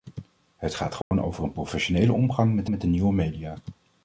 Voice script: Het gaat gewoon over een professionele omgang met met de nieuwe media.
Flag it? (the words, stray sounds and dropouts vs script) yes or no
yes